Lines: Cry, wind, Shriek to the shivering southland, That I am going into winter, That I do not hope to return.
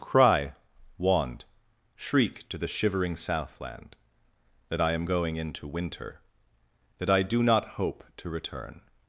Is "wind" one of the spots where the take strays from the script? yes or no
yes